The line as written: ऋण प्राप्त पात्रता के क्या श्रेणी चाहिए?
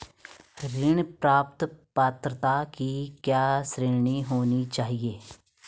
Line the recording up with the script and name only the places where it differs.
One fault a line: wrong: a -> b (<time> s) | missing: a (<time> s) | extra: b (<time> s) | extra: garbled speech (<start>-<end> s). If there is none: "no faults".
wrong: के -> की (2.6 s)
extra: होनी (4.2 s)